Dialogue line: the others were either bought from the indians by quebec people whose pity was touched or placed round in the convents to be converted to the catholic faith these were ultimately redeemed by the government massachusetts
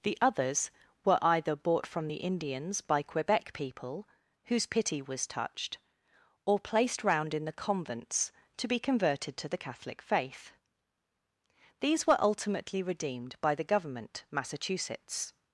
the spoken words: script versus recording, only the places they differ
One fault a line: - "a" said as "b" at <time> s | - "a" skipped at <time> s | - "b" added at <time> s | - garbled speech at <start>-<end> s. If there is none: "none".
none